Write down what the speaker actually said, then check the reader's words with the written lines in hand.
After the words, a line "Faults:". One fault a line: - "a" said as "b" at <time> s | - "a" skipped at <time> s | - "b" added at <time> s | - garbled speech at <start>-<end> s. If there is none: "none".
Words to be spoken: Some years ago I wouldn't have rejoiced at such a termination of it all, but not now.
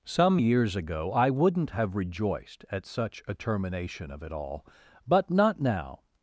Some years ago I wouldn't have rejoiced at such a termination of it all, but not now.
Faults:
none